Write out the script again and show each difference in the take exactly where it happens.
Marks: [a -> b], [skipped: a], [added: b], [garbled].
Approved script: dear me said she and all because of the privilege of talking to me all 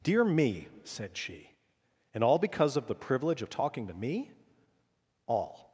dear me said she and all because of the privilege of talking to me all